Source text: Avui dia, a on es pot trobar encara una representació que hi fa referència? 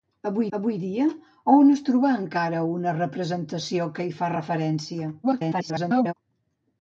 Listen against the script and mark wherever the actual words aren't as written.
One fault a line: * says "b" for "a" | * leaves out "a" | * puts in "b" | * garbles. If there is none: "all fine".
* puts in "avui"
* leaves out "pot"
* garbles